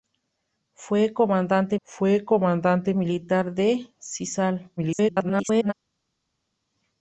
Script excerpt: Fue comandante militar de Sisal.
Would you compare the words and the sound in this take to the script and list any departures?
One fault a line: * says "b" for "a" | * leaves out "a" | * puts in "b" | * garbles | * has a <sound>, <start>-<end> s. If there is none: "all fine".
* puts in "fue comandante"
* garbles